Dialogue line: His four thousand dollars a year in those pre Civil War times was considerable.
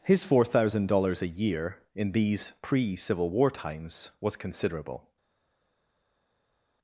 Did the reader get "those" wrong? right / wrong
wrong